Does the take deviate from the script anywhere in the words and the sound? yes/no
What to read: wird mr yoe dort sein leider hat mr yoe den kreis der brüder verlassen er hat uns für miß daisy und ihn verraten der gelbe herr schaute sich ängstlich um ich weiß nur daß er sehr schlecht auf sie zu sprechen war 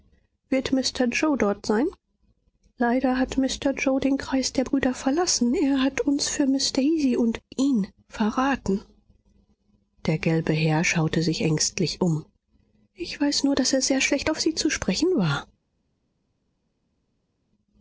no